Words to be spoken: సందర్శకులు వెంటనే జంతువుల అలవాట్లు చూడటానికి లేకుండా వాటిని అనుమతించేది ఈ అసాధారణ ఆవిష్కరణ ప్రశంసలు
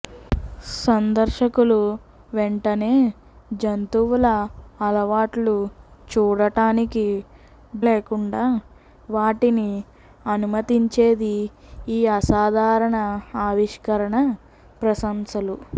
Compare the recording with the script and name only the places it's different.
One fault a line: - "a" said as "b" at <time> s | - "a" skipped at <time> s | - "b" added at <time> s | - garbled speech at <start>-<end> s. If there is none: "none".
none